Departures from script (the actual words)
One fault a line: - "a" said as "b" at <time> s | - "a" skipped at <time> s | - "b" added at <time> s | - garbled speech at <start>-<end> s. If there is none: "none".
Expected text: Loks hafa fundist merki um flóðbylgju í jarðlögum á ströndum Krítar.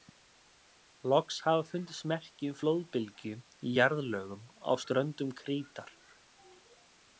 none